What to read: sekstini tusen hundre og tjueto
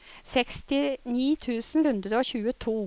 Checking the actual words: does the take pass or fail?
pass